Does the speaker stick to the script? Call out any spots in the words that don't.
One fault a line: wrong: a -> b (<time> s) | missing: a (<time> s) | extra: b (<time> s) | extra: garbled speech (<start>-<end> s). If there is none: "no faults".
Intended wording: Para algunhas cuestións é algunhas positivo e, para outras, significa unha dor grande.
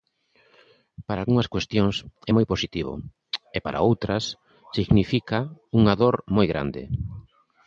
wrong: algunhas -> moi (2.3 s)
extra: moi (6.3 s)